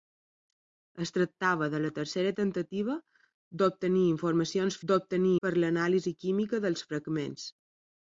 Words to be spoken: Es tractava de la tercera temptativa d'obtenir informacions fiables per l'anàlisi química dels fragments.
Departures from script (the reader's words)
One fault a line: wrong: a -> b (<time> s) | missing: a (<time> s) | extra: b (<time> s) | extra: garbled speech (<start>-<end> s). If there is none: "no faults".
wrong: fiables -> d'obtenir (4.9 s)